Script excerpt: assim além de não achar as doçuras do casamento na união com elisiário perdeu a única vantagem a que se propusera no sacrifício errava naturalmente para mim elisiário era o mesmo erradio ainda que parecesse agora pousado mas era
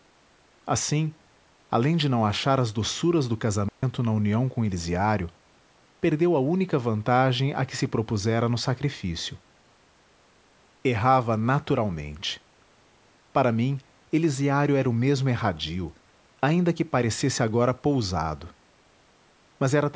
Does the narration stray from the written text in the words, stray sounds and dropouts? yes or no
yes